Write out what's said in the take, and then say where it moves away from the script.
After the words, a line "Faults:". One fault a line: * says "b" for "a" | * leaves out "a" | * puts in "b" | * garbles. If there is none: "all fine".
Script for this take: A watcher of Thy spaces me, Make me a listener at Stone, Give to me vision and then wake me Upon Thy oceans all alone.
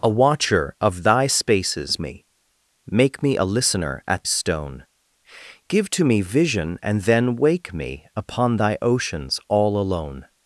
A watcher of Thy spaces me, Make me a listener at Stone, Give to me vision and then wake me Upon Thy oceans all alone.
Faults:
all fine